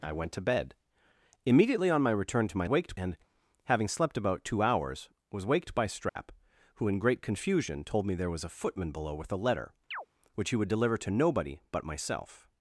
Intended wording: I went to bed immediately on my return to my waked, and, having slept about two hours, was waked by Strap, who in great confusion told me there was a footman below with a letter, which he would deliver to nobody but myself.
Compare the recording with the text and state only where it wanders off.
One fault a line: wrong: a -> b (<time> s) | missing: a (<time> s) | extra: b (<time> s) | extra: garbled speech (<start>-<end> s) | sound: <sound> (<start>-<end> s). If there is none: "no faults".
sound: dropout (6.1-6.2 s)
sound: chirp (9.9-10.1 s)